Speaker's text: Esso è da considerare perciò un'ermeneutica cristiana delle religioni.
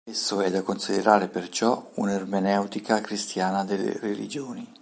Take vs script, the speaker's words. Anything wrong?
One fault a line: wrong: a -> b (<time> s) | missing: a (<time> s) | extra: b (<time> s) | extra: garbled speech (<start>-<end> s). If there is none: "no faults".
no faults